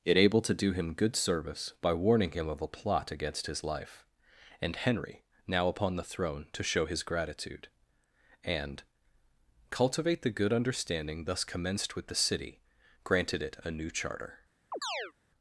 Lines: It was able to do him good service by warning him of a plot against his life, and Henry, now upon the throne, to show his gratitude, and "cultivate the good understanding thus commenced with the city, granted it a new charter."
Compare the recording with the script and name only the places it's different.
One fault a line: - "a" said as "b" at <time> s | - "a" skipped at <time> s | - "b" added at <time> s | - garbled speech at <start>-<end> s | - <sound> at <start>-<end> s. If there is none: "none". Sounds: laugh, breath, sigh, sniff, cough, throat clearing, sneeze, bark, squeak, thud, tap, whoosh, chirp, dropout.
- "was" skipped at 0.2 s
- chirp at 14.7-15.1 s